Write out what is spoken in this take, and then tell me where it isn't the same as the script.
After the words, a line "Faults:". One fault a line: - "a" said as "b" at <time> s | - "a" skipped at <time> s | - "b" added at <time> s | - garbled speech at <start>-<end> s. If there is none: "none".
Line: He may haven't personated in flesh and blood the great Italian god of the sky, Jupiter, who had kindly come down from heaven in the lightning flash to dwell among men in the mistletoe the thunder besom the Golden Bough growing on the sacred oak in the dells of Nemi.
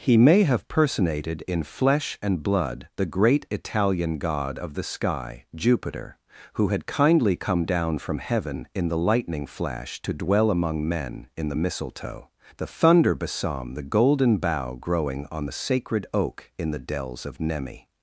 He may have personated in flesh and blood the great Italian god of the sky, Jupiter, who had kindly come down from heaven in the lightning flash to dwell among men in the mistletoe the thunder besom the Golden Bough growing on the sacred oak in the dells of Nemi.
Faults:
- "haven't" said as "have" at 0.5 s